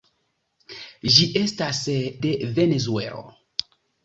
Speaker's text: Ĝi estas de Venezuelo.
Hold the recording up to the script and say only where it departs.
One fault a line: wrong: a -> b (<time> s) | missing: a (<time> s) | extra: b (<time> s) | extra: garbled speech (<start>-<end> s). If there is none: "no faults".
no faults